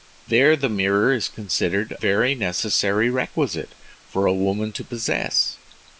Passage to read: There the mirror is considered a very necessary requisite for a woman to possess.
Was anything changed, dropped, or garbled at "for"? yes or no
no